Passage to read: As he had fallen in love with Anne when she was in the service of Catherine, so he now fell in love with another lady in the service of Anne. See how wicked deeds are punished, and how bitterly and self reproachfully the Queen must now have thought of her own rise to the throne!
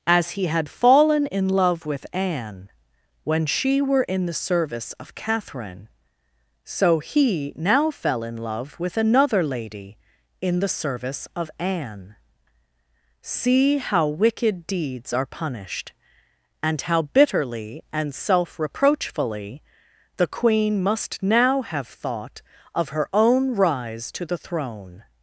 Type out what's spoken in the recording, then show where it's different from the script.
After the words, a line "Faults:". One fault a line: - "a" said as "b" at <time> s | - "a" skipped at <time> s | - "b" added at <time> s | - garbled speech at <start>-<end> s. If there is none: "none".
As he had fallen in love with Anne when she were in the service of Catherine, so he now fell in love with another lady in the service of Anne. See how wicked deeds are punished, and how bitterly and self reproachfully the Queen must now have thought of her own rise to the throne!
Faults:
- "was" said as "were" at 3.8 s